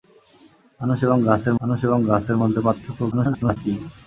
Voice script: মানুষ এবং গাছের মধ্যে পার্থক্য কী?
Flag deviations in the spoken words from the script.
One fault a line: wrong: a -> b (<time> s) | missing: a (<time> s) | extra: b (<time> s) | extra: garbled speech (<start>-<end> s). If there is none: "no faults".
extra: মানুষ এবং গাছের (1.6 s)
extra: garbled speech (3.1-3.6 s)